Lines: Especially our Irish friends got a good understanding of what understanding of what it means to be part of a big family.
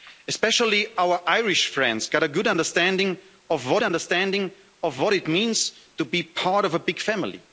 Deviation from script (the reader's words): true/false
false